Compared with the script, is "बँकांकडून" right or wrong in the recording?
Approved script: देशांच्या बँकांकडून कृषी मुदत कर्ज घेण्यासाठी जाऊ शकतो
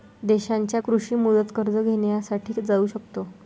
wrong